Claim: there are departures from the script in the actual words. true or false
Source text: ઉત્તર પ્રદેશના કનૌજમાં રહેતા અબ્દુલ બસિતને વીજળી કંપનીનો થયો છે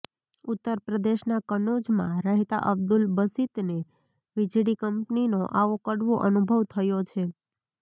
true